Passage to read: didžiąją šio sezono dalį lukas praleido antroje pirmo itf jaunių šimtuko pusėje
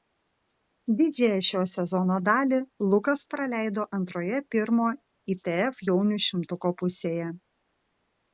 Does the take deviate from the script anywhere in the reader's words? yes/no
no